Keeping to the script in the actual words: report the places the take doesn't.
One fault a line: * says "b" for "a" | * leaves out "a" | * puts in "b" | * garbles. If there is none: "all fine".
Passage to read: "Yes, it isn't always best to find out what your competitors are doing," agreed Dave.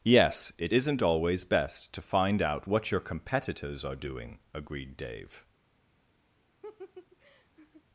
all fine